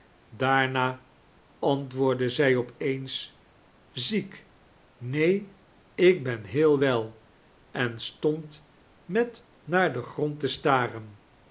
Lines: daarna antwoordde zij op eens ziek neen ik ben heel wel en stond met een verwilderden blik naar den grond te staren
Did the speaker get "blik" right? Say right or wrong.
wrong